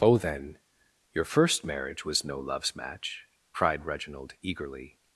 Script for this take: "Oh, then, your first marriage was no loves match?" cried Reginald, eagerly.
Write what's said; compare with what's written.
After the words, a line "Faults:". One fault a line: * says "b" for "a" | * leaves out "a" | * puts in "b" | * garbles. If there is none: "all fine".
"Oh, then, your first marriage was no loves match?" cried Reginald, eagerly.
Faults:
all fine